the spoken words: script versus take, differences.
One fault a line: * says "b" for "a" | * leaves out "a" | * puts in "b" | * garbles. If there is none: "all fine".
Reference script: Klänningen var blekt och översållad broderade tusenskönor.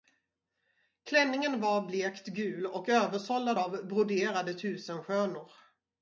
* puts in "gul"
* puts in "av"